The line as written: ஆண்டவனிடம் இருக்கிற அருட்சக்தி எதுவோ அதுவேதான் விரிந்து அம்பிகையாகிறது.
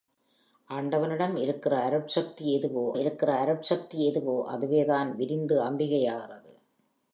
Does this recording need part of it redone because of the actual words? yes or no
yes